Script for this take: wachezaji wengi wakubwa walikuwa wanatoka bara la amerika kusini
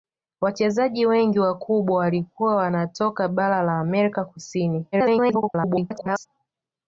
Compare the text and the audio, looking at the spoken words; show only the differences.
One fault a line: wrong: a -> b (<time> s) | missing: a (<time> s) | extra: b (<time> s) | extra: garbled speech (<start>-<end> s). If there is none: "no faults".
extra: garbled speech (4.9-6.3 s)